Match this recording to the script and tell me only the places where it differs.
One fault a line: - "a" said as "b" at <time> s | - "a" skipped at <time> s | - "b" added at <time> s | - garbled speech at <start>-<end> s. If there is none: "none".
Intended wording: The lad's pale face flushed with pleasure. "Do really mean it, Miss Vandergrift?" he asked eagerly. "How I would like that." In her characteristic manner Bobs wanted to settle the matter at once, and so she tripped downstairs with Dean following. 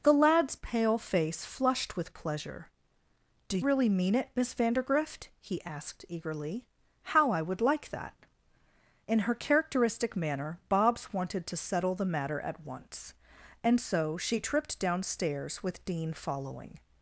none